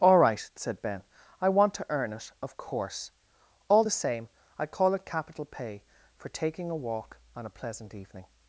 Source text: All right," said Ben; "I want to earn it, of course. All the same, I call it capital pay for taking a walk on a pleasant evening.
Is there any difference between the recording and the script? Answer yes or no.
no